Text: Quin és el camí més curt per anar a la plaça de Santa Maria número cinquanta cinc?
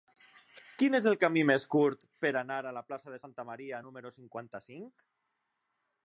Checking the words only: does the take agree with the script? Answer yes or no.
yes